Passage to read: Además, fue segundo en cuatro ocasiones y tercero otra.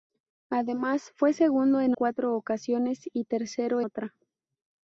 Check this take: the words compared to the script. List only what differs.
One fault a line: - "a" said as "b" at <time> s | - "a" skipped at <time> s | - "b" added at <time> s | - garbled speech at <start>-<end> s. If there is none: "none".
none